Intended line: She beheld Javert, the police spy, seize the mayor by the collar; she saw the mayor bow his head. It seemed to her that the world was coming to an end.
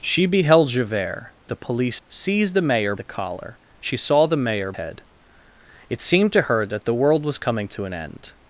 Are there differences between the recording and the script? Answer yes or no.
yes